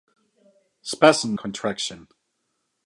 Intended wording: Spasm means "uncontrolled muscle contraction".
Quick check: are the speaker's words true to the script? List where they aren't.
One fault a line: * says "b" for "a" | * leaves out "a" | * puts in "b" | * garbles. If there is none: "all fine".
* leaves out "means uncontrolled muscle"